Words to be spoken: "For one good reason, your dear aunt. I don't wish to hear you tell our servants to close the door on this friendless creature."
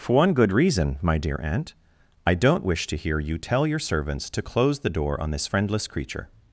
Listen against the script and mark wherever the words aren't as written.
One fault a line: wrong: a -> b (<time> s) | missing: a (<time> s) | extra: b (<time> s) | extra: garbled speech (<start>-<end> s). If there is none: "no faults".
wrong: your -> my (1.0 s)
wrong: our -> your (3.7 s)